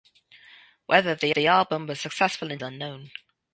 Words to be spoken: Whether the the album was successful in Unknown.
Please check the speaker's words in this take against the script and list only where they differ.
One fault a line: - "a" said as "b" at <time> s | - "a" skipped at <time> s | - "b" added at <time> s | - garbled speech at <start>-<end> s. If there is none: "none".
none